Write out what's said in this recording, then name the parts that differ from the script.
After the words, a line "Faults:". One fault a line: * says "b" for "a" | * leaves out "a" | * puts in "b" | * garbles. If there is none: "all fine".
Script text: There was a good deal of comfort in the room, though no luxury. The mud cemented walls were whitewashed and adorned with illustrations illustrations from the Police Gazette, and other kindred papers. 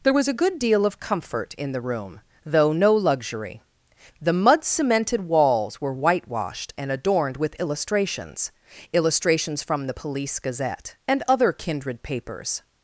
There was a good deal of comfort in the room, though no luxury. The mud cemented walls were whitewashed and adorned with illustrations illustrations from the Police Gazette, and other kindred papers.
Faults:
all fine